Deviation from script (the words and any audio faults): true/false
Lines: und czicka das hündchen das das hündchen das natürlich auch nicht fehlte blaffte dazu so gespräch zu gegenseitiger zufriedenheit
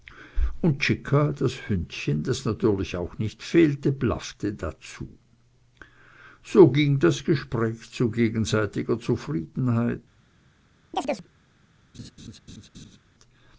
true